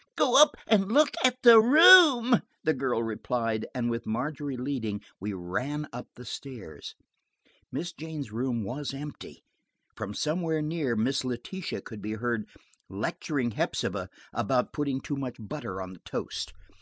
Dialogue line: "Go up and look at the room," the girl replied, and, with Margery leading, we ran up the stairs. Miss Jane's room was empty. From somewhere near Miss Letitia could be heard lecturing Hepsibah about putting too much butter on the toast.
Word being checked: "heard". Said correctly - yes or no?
yes